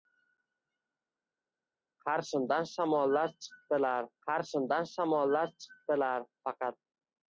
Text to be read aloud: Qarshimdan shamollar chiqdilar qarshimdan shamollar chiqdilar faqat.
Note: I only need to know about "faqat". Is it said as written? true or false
true